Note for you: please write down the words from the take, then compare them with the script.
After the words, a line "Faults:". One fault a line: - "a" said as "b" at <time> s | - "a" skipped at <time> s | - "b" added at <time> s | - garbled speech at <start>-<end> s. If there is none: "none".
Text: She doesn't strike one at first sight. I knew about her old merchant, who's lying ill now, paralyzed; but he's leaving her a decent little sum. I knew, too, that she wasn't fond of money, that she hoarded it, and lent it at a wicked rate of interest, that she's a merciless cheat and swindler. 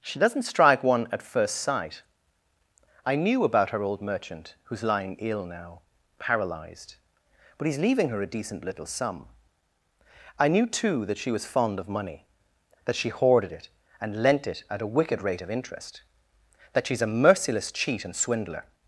She doesn't strike one at first sight. I knew about her old merchant, who's lying ill now, paralyzed; but he's leaving her a decent little sum. I knew, too, that she was fond of money, that she hoarded it, and lent it at a wicked rate of interest, that she's a merciless cheat and swindler.
Faults:
- "wasn't" said as "was" at 11.3 s